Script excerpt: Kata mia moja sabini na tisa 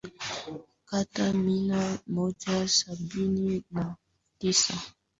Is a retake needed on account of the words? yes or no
no